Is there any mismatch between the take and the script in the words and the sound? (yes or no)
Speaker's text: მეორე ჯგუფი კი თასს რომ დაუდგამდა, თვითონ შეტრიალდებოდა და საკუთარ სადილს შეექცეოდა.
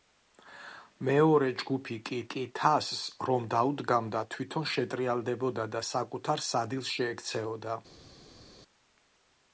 yes